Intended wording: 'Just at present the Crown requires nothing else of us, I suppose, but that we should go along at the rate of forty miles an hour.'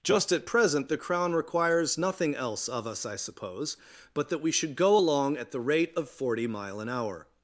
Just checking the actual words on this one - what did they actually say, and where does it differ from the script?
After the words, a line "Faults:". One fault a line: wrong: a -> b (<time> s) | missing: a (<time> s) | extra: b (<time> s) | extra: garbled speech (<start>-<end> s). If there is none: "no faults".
'Just at present the Crown requires nothing else of us, I suppose, but that we should go along at the rate of forty mile an hour.'
Faults:
wrong: miles -> mile (6.5 s)